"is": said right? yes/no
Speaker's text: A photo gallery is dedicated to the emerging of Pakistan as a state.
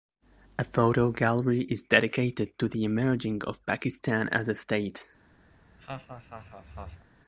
yes